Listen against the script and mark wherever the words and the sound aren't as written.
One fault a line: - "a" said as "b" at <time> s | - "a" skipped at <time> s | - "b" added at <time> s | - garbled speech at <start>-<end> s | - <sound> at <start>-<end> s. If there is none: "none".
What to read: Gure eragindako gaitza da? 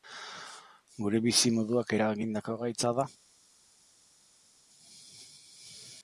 - "bizimoduak" added at 1.2 s